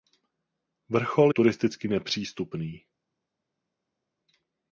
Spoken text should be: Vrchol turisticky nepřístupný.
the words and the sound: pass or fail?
pass